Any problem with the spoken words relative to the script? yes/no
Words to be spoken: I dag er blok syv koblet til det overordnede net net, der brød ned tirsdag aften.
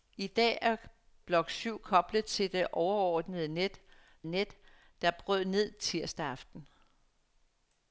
no